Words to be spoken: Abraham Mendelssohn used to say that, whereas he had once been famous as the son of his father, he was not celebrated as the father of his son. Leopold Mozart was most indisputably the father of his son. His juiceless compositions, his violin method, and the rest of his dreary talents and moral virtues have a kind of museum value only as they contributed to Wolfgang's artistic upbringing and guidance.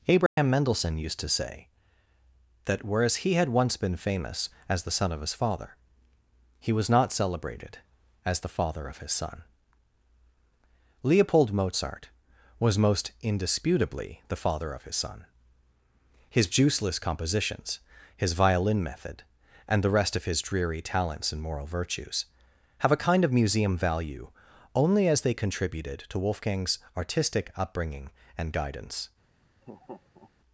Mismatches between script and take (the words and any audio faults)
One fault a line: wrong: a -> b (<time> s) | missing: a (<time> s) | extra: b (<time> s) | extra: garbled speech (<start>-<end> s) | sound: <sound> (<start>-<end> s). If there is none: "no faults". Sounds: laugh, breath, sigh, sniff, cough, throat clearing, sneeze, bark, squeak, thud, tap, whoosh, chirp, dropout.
sound: dropout (0.3-0.4 s)
sound: laugh (29.6-30.3 s)